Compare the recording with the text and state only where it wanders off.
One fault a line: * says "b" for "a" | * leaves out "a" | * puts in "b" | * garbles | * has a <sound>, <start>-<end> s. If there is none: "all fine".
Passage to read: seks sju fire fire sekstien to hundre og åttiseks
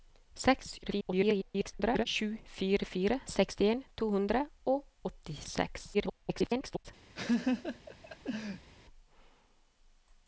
* garbles
* garbles
* has a laugh, 7.1-8.7 s